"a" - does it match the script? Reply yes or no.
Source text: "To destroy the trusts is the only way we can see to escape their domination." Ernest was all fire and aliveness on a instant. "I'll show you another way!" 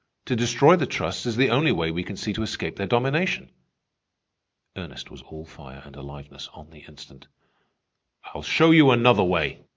no